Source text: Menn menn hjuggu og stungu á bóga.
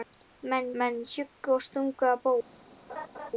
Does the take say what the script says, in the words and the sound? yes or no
no